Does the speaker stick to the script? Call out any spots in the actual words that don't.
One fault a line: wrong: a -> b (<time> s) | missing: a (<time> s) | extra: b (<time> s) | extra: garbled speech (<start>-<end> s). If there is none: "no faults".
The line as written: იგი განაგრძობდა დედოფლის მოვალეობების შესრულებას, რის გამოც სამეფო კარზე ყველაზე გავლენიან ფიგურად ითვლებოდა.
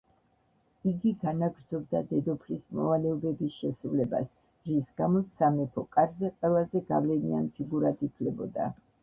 no faults